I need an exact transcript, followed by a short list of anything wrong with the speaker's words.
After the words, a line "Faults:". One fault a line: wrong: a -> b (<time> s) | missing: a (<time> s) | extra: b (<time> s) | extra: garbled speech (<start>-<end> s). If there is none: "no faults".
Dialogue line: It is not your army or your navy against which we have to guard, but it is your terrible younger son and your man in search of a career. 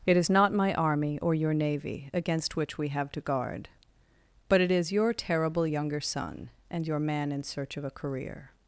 It is not my army or your navy against which we have to guard, but it is your terrible younger son and your man in search of a career.
Faults:
wrong: your -> my (0.5 s)